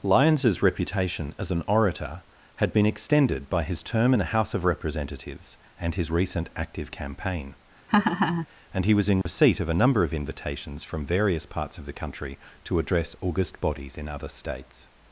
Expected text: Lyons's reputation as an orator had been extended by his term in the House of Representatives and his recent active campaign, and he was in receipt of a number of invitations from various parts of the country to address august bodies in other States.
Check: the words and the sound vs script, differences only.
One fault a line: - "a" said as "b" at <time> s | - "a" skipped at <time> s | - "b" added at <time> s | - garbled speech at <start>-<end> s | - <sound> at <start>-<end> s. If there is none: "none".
- laugh at 7.9-8.5 s
- dropout at 9.2-9.3 s